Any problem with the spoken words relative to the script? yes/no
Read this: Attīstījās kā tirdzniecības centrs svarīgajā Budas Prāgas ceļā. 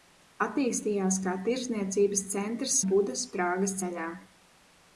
yes